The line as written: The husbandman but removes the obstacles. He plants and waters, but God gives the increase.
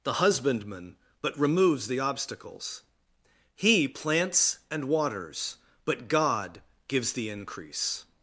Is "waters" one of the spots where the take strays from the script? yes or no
no